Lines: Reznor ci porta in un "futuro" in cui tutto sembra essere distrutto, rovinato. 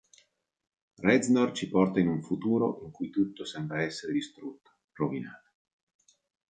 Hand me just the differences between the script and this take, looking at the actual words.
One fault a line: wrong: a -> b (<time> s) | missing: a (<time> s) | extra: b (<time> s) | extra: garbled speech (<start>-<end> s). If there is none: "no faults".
no faults